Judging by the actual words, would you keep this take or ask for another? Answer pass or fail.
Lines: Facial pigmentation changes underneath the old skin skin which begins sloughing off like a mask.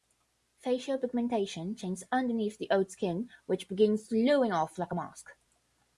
fail